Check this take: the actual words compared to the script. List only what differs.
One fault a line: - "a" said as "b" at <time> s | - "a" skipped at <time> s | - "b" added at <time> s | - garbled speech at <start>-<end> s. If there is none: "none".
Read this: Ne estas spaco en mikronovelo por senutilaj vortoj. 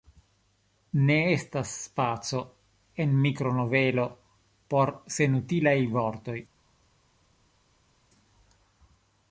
none